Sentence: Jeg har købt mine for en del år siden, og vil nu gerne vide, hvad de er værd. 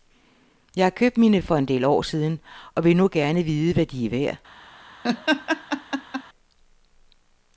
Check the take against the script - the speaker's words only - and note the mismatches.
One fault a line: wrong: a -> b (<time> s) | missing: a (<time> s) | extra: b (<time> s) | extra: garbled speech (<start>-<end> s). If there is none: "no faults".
no faults